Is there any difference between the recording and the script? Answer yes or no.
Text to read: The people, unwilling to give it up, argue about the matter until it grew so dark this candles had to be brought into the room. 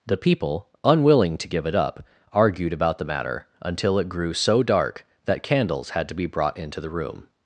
yes